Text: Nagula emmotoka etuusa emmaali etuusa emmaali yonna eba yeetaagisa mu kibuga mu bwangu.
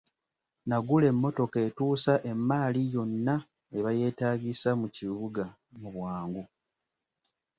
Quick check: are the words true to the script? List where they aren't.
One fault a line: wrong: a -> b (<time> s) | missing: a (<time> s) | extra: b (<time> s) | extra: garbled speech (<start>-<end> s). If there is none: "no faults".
missing: etuusa emmaali (2.8 s)